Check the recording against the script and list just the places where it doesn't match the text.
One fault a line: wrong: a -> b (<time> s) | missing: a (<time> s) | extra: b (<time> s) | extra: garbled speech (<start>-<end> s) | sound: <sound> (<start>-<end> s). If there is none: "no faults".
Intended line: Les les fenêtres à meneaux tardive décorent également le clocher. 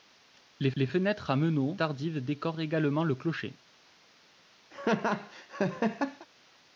sound: laugh (4.7-6.3 s)